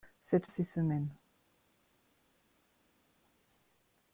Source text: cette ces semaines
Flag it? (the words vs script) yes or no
no